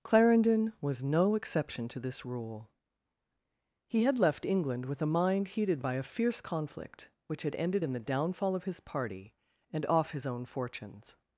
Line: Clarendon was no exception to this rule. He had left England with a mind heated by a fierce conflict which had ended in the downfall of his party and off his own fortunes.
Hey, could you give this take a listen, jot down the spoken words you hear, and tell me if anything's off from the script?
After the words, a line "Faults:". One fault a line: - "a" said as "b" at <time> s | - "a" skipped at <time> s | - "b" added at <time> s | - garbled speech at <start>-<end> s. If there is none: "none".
Clarendon was no exception to this rule. He had left England with a mind heated by a fierce conflict which had ended in the downfall of his party and off his own fortunes.
Faults:
none